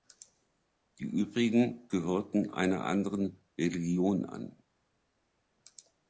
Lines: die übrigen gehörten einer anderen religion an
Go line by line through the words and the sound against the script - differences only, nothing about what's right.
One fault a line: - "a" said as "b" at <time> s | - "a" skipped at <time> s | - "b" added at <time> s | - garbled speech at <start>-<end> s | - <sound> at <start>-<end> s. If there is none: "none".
none